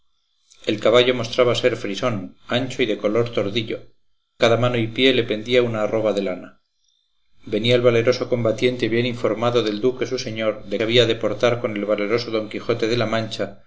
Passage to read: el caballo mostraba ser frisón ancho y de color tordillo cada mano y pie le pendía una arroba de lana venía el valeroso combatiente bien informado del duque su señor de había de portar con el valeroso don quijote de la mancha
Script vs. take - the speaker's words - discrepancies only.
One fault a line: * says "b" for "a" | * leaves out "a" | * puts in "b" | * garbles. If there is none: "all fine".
all fine